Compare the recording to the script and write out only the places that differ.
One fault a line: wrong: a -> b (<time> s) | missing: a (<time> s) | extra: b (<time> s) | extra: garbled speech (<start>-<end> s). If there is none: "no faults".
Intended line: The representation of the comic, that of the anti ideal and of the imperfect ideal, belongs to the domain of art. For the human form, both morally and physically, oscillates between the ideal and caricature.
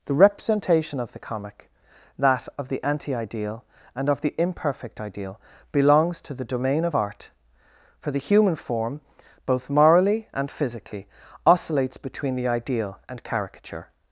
no faults